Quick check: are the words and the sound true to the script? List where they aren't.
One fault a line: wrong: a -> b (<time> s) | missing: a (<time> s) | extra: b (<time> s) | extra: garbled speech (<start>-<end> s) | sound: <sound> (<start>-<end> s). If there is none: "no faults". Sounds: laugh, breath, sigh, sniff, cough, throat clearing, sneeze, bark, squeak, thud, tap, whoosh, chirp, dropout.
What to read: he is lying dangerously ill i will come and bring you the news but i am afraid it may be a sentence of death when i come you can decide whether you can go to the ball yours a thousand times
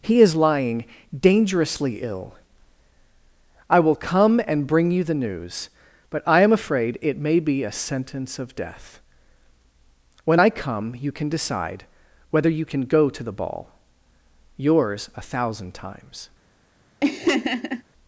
sound: laugh (17.0-17.8 s)